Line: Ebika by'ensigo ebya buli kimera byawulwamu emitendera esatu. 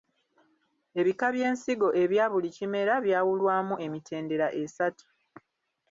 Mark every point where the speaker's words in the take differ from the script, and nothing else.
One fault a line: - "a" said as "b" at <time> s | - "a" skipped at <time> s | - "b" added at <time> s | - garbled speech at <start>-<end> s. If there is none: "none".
none